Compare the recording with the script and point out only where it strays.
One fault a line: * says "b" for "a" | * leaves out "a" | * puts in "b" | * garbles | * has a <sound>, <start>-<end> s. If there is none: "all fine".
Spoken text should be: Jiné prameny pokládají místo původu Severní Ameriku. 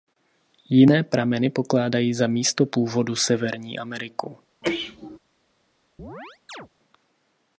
* puts in "za"
* has a sneeze, 4.6-5.2 s
* has a chirp, 6.0-6.7 s